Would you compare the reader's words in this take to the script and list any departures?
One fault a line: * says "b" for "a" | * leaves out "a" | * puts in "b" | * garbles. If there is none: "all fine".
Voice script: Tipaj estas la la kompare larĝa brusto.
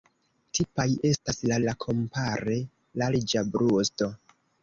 all fine